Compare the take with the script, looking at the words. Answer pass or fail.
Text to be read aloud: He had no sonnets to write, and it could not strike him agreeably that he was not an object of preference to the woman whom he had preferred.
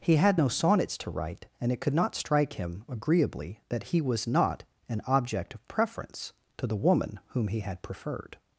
pass